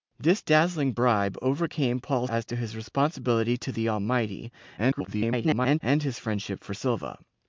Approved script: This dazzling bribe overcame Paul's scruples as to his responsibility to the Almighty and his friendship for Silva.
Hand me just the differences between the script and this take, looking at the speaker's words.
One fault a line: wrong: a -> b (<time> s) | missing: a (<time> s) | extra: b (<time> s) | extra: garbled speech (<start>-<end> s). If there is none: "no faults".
missing: scruples (2.3 s)
extra: garbled speech (4.8-5.8 s)